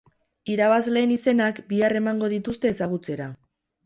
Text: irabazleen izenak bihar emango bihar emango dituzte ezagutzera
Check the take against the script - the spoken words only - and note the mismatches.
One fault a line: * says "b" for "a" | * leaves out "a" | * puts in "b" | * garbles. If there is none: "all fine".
* leaves out "bihar emango"